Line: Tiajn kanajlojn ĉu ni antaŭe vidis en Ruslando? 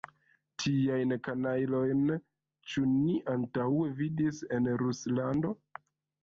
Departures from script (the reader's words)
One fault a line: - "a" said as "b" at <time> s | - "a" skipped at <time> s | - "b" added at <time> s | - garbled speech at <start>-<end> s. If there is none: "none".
none